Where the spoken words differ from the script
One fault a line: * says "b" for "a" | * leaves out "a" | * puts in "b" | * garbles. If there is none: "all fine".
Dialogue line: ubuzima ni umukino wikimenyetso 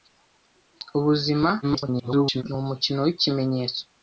* garbles